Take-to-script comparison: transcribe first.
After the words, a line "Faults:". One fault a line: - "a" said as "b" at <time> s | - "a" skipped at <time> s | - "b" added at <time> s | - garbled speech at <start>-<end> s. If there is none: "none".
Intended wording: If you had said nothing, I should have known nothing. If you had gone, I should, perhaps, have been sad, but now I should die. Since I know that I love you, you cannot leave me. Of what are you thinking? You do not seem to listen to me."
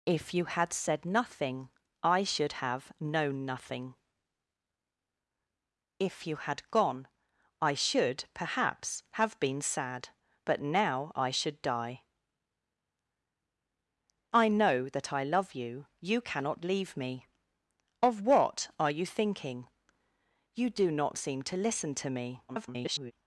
If you had said nothing, I should have known nothing. If you had gone, I should, perhaps, have been sad, but now I should die. I know that I love you, you cannot leave me. Of what are you thinking? You do not seem to listen to me." [garbled]
Faults:
- "Since" skipped at 12.0 s
- garbled speech at 22.5-23.1 s